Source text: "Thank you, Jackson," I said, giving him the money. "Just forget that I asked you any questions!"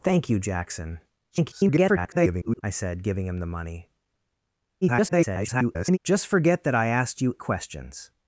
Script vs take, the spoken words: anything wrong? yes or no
yes